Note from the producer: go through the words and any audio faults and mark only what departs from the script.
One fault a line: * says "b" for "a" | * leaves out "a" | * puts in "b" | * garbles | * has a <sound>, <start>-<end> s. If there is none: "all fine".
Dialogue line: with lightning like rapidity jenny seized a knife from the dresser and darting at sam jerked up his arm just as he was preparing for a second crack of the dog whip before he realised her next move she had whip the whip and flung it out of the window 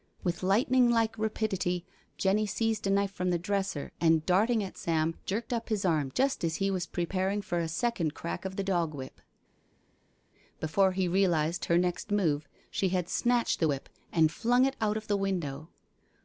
* says "snatched" for "whip"